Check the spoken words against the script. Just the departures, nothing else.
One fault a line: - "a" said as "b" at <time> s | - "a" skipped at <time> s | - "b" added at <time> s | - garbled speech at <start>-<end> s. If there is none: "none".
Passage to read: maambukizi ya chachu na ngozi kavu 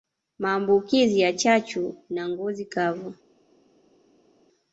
none